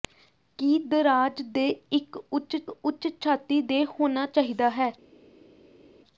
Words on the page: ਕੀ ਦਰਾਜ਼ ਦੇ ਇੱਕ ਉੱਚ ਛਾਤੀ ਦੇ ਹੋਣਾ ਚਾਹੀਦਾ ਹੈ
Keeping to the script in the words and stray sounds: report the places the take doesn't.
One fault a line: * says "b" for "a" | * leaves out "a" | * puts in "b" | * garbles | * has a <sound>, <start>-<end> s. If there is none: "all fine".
* puts in "ਉੱਚ"